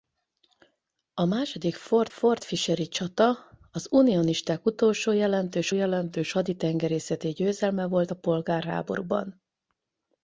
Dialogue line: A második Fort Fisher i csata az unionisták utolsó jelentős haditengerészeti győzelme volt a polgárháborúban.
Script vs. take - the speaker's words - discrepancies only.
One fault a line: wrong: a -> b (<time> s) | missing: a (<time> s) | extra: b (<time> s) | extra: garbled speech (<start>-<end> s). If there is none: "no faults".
extra: Fort (2.1 s)
extra: jelentős (5.7 s)